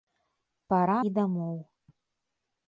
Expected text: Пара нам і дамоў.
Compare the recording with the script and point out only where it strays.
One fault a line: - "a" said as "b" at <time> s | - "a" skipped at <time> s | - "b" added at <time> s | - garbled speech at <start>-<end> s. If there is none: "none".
- "нам" skipped at 0.9 s